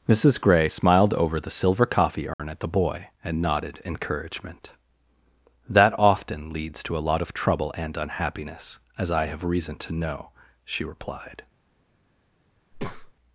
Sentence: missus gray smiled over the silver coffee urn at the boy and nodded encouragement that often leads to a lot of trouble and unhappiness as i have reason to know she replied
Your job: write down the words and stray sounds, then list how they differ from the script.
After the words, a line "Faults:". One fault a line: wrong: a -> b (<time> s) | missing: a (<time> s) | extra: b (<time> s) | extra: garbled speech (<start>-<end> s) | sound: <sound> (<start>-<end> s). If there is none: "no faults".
missus gray smiled over the silver coffee urn at the boy and nodded encouragement that often leads to a lot of trouble and unhappiness as i have reason to know she replied
Faults:
sound: dropout (2.3-2.4 s)
sound: breath (12.7-13.1 s)